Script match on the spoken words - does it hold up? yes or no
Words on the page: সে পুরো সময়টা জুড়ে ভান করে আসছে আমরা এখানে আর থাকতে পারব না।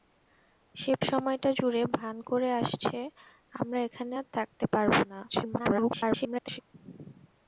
no